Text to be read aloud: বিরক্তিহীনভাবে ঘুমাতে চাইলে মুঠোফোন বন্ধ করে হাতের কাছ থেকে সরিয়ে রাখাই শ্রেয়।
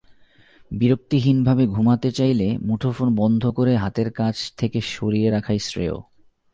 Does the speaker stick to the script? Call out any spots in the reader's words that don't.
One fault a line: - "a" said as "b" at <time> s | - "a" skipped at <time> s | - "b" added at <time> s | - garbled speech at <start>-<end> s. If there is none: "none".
none